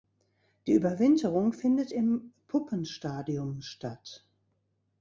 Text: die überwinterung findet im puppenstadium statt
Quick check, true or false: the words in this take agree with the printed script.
true